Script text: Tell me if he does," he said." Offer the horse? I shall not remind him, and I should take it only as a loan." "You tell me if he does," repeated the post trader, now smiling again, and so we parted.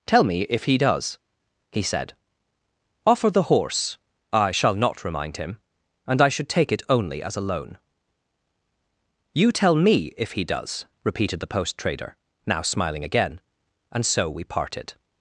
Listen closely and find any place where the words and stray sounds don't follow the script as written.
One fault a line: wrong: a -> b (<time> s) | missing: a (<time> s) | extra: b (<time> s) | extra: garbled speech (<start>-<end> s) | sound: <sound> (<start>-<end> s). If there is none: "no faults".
no faults